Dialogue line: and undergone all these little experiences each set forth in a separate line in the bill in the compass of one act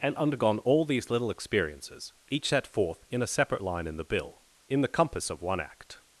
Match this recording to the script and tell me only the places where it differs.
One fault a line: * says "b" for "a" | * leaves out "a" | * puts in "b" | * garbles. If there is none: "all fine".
all fine